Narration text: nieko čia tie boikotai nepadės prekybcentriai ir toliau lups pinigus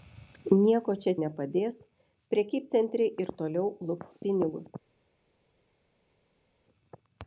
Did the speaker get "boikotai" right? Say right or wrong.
wrong